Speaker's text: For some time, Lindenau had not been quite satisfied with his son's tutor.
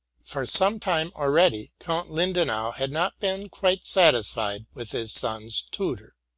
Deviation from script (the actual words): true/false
true